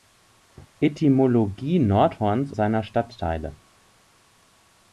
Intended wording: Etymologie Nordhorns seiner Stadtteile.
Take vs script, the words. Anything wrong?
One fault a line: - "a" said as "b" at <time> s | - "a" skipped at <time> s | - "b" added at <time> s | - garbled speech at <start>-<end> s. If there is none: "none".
none